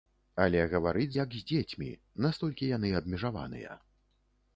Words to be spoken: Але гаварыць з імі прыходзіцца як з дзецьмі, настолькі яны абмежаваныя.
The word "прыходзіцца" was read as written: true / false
false